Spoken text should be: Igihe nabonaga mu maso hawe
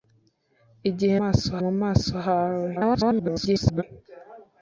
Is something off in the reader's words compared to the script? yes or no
yes